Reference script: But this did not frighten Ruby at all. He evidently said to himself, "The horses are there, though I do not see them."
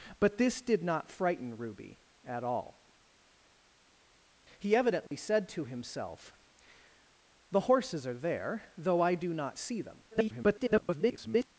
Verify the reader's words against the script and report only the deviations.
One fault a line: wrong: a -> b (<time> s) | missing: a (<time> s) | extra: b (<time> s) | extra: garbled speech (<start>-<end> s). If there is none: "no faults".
extra: garbled speech (10.1-11.5 s)